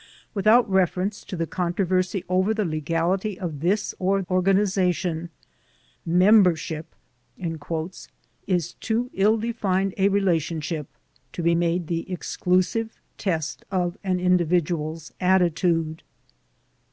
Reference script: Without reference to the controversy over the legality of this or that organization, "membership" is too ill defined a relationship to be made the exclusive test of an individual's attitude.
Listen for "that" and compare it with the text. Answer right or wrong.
wrong